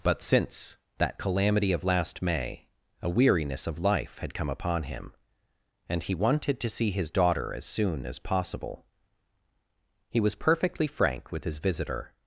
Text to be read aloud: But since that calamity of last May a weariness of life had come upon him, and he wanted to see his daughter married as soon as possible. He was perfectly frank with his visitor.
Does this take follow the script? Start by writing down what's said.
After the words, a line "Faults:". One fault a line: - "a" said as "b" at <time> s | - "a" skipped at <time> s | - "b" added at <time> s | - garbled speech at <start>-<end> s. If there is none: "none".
But since that calamity of last May a weariness of life had come upon him, and he wanted to see his daughter as soon as possible. He was perfectly frank with his visitor.
Faults:
- "married" skipped at 7.5 s